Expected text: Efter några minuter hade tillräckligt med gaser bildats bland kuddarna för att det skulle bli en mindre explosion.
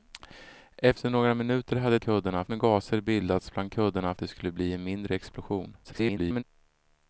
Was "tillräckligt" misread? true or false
true